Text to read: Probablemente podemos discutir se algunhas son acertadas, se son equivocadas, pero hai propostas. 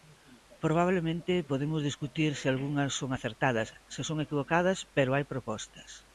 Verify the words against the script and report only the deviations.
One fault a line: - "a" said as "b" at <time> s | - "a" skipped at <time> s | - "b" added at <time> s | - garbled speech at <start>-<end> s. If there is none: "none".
none